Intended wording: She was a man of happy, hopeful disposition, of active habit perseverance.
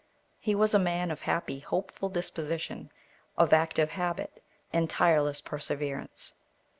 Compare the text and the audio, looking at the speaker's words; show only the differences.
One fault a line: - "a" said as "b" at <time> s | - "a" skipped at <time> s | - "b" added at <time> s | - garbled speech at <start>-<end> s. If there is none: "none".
- "She" said as "He" at 0.4 s
- "and tireless" added at 4.7 s